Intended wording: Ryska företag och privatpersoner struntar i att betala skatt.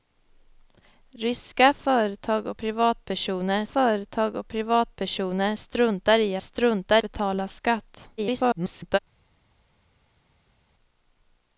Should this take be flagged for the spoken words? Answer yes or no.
yes